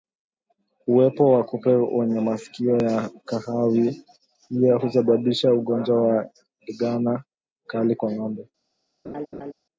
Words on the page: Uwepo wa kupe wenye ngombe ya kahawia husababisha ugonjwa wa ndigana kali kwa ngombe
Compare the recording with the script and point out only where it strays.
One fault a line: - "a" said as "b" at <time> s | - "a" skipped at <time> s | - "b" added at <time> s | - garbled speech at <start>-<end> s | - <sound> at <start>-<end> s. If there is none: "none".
- "ngombe" said as "masikio" at 2.2 s
- laugh at 9.0-9.5 s